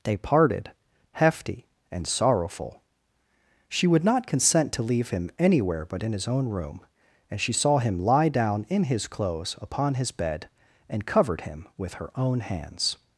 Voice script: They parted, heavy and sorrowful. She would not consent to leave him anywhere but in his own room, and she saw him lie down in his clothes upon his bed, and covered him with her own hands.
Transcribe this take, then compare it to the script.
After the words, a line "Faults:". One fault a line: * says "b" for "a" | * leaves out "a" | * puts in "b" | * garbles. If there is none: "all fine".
They parted, hefty and sorrowful. She would not consent to leave him anywhere but in his own room, and she saw him lie down in his clothes upon his bed, and covered him with her own hands.
Faults:
* says "hefty" for "heavy"